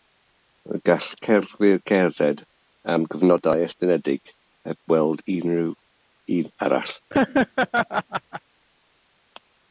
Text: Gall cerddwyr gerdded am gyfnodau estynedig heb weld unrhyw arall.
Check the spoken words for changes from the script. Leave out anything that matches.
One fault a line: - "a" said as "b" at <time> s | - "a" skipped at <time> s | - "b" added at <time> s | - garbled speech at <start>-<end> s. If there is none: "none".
- "un" added at 6.4 s